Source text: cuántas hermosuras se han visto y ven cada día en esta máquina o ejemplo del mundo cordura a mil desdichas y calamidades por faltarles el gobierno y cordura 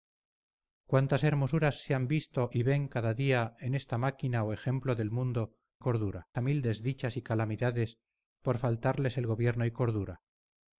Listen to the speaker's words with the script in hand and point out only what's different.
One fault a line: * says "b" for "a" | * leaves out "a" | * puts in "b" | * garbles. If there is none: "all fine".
all fine